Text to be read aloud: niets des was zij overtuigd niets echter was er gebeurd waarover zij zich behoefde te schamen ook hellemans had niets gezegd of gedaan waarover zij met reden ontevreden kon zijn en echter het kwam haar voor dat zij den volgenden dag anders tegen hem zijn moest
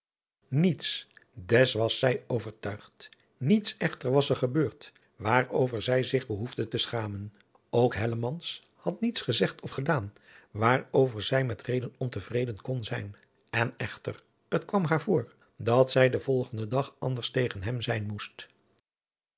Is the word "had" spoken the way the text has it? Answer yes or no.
yes